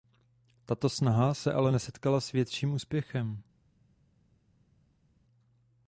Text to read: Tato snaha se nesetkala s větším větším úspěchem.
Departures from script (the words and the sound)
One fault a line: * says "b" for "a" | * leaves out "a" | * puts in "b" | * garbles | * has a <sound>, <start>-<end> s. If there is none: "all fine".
* puts in "ale"
* leaves out "větším"